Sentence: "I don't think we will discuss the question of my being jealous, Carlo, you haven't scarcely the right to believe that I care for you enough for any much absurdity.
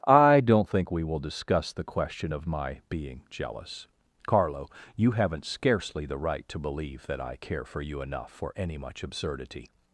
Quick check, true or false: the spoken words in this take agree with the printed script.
true